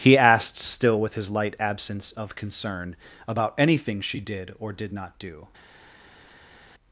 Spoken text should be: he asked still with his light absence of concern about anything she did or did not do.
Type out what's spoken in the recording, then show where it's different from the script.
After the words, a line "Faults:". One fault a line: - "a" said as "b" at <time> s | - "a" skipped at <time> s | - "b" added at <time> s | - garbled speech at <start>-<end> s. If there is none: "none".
he asked still with his light absence of concern about anything she did or did not do.
Faults:
none